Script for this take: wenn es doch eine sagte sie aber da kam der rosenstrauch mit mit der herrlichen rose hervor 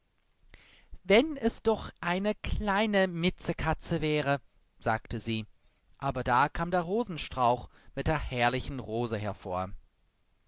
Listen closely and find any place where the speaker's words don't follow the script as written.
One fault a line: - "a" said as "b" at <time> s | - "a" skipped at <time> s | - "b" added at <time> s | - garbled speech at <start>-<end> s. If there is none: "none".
- "kleine mitzekatze wäre" added at 2.3 s
- "mit" skipped at 8.1 s